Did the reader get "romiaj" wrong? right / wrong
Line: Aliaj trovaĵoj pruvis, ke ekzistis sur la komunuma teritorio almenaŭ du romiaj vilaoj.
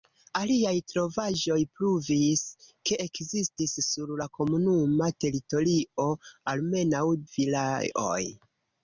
wrong